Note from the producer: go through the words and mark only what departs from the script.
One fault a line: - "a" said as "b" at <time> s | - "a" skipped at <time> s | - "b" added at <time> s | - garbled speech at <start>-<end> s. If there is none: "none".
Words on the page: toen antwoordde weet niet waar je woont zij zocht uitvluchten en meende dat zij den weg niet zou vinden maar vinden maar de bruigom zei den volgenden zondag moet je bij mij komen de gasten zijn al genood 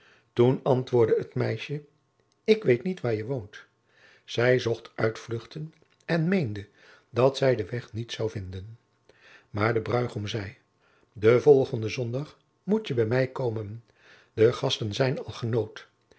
- "het meisje ik" added at 1.2 s
- "vinden maar" skipped at 9.7 s